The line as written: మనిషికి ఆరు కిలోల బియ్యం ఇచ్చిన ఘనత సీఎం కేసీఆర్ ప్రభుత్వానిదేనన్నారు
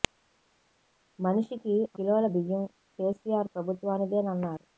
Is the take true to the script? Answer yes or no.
no